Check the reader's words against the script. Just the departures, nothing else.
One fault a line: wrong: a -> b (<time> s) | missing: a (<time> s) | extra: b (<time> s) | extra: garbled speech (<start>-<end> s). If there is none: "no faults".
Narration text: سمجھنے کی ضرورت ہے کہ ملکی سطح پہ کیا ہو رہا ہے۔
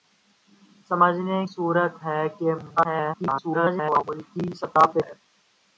missing: کی (1.4 s)
extra: garbled speech (2.8-4.0 s)
missing: کیا ہو رہا (5.0 s)